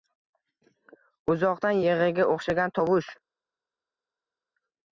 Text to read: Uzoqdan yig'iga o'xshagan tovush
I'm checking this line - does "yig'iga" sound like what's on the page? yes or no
yes